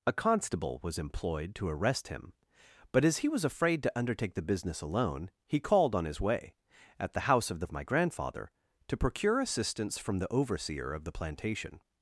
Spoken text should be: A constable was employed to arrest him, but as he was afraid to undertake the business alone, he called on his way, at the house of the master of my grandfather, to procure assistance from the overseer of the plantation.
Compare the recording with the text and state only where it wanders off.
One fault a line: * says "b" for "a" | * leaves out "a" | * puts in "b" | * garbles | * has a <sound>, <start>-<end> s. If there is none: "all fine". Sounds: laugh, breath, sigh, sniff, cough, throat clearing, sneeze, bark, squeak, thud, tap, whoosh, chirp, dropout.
* leaves out "master"